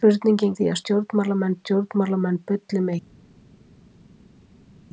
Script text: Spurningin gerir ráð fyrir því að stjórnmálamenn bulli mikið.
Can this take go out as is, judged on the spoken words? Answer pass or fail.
fail